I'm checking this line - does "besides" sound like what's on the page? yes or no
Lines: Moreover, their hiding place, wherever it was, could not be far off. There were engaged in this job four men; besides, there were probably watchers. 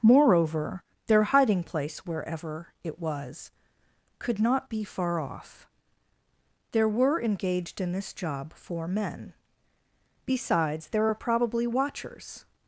yes